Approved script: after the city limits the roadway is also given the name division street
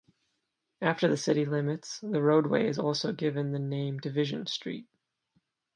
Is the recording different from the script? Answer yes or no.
no